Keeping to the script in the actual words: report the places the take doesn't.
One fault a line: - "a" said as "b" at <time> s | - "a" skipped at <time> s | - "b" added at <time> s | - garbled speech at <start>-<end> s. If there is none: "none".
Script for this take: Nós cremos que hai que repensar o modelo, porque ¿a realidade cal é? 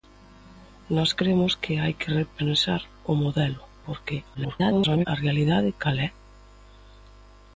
- garbled speech at 4.3-5.1 s